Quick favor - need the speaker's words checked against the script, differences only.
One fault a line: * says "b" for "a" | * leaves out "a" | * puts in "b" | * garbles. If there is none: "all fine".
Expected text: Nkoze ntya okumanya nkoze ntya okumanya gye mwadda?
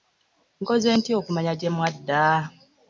* leaves out "nkoze ntya okumanya"